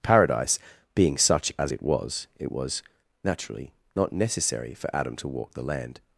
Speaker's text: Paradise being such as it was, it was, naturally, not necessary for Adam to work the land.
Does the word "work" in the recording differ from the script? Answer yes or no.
yes